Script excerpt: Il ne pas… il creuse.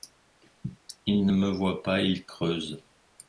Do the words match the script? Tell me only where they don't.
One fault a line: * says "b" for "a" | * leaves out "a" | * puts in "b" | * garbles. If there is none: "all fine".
* puts in "me voit"